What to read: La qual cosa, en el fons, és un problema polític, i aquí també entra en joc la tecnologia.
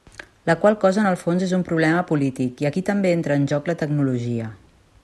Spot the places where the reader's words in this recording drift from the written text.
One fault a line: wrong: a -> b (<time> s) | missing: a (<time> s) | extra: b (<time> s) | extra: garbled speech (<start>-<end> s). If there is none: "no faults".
no faults